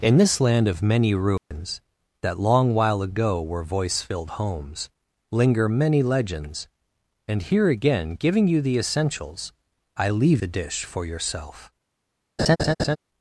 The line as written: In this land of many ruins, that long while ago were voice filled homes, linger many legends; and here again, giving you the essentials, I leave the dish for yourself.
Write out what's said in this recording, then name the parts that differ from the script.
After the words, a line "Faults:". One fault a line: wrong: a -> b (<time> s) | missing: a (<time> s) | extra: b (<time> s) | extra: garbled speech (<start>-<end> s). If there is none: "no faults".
In this land of many ruins, that long while ago were voice filled homes, linger many legends; and here again, giving you the essentials, I leave the dish for yourself.
Faults:
no faults